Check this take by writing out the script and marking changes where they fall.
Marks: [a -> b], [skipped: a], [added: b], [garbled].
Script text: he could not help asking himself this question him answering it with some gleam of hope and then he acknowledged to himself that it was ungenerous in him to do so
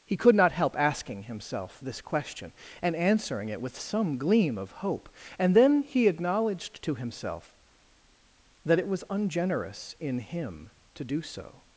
he could not help asking himself this question [him -> and] answering it with some gleam of hope and then he acknowledged to himself that it was ungenerous in him to do so